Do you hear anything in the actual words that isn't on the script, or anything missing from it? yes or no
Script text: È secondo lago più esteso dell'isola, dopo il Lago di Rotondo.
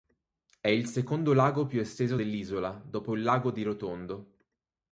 yes